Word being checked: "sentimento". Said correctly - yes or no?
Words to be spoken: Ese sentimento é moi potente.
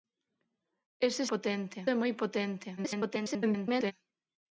no